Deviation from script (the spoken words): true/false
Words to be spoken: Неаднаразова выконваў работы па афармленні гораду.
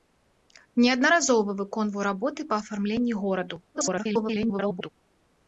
true